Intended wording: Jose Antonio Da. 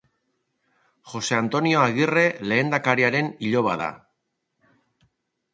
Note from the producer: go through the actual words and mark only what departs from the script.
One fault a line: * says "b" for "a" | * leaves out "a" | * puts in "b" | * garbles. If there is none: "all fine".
* puts in "Agirre lehendakariaren iloba"